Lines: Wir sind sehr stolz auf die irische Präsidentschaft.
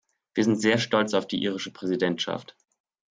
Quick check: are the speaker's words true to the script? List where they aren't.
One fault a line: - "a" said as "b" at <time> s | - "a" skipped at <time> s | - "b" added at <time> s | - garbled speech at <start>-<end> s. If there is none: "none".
none